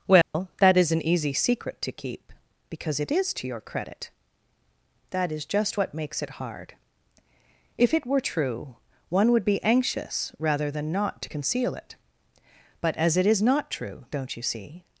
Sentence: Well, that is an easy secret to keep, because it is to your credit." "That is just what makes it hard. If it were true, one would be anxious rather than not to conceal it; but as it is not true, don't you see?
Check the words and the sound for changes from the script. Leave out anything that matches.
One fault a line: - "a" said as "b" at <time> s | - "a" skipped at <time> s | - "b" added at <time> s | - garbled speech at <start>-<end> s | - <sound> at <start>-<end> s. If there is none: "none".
- dropout at 0.2-0.3 s